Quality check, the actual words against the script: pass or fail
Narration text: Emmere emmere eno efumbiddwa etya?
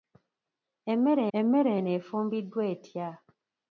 pass